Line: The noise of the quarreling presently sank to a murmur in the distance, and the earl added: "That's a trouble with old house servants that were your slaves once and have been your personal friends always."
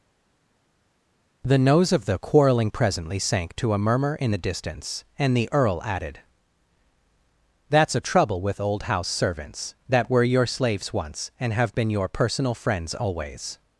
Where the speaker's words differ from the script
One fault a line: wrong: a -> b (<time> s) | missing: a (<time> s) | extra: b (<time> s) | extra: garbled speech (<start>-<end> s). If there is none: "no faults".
wrong: noise -> nose (1.6 s)